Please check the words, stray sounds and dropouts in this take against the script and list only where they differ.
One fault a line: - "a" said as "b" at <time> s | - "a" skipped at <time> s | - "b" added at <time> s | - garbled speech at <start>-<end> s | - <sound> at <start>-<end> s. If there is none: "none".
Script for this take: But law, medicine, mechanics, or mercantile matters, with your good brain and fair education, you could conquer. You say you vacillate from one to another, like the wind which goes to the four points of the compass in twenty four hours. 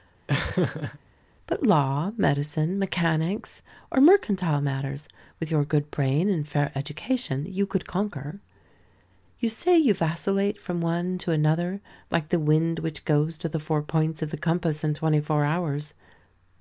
- laugh at 0.3-1.0 s